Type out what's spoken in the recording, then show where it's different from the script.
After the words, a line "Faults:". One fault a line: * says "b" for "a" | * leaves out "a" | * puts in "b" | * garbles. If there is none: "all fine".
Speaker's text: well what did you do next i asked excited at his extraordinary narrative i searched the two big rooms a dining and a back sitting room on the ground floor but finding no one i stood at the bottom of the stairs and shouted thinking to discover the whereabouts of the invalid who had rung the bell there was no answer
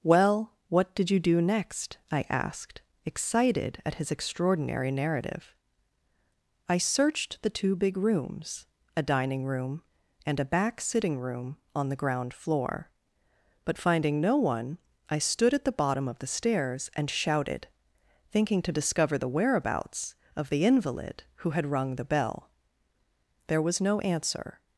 well what did you do next i asked excited at his extraordinary narrative i searched the two big rooms a dining room and a back sitting room on the ground floor but finding no one i stood at the bottom of the stairs and shouted thinking to discover the whereabouts of the invalid who had rung the bell there was no answer
Faults:
* puts in "room"